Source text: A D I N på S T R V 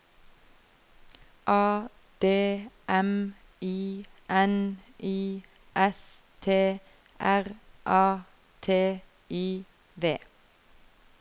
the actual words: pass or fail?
fail